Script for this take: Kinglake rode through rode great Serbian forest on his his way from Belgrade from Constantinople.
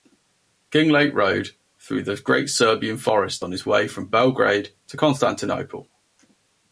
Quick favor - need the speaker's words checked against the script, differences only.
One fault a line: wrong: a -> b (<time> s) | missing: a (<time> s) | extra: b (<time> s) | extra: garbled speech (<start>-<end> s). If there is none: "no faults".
wrong: rode -> the (2.0 s)
missing: his (3.7 s)
wrong: from -> to (4.9 s)